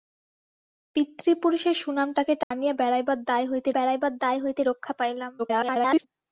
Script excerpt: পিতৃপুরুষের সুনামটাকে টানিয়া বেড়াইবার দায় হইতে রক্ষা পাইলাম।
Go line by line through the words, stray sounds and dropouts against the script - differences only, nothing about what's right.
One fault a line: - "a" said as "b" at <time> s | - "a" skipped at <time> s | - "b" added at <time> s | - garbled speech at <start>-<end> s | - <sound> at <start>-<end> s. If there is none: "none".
- dropout at 2.4-2.5 s
- "বেড়াইবার দায় হইতে" added at 3.7 s
- garbled speech at 5.4-6.0 s